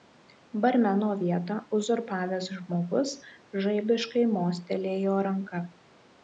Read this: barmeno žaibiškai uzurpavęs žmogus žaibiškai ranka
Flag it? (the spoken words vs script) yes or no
yes